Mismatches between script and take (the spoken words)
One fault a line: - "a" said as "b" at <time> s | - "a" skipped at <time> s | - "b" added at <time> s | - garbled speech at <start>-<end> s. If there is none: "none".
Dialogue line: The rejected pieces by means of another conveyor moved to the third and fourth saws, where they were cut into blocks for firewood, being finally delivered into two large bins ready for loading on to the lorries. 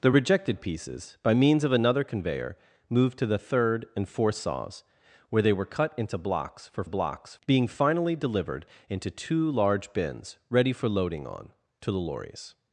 - "firewood" said as "blocks" at 6.8 s